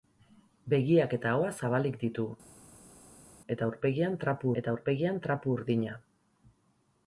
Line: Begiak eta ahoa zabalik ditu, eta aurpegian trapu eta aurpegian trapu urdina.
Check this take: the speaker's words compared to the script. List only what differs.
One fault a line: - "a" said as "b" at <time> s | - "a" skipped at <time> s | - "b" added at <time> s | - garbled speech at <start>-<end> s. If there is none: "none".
none